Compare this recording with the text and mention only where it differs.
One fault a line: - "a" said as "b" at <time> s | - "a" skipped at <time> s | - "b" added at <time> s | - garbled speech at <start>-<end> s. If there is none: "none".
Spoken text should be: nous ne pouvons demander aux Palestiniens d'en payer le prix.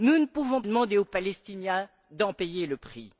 none